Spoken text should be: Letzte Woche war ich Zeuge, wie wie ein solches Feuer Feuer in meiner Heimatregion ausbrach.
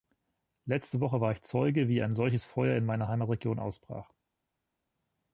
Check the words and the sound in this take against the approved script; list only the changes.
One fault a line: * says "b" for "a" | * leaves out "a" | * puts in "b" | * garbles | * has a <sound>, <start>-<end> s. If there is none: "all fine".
* leaves out "wie"
* leaves out "Feuer"